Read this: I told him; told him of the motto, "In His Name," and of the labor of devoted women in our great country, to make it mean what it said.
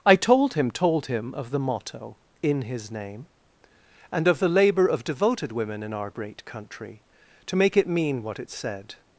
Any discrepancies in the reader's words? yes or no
no